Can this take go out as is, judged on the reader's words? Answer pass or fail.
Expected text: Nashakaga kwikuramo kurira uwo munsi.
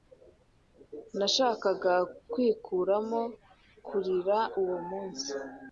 pass